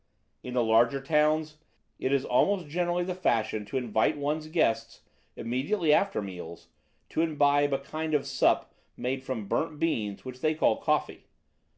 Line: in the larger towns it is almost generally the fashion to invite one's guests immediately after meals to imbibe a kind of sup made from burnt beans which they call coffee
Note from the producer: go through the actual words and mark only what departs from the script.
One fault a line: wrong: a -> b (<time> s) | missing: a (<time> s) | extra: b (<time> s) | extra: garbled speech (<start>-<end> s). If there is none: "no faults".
no faults